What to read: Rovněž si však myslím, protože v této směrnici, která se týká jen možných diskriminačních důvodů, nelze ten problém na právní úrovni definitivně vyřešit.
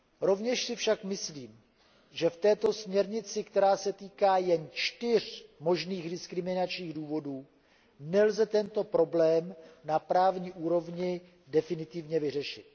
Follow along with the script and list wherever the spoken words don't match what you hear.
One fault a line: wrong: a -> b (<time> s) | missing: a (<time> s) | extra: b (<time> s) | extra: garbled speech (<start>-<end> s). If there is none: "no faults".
wrong: protože -> že (2.1 s)
extra: čtyř (4.7 s)
wrong: ten -> tento (8.5 s)